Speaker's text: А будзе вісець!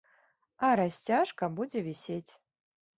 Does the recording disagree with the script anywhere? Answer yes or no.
yes